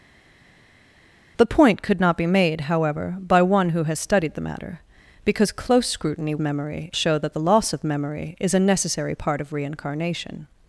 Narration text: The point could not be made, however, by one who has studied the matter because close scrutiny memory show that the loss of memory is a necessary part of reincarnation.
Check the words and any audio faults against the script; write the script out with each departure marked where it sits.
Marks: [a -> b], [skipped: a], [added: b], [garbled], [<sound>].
The point could not be made, however, by one who has studied the matter because close scrutiny memory show that the loss of memory is a necessary part of reincarnation.